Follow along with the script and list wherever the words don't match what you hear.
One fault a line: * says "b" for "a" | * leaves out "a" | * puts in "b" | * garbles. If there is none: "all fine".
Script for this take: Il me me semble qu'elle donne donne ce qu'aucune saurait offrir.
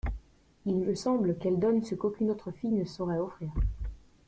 * leaves out "me"
* leaves out "donne"
* puts in "autre fille ne"